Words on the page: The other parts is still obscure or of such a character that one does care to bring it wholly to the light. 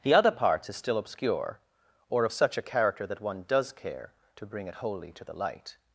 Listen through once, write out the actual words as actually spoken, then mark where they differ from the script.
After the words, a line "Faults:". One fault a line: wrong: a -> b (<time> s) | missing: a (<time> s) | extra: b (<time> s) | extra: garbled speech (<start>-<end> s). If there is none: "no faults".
The other parts is still obscure or of such a character that one does care to bring it wholly to the light.
Faults:
no faults